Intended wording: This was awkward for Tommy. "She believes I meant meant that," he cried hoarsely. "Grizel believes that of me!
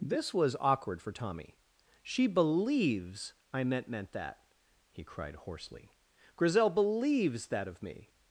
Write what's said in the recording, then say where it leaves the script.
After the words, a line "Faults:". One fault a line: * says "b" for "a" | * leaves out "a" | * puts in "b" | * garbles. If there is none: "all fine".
This was awkward for Tommy. "She believes I meant meant that," he cried hoarsely. "Grizel believes that of me!
Faults:
all fine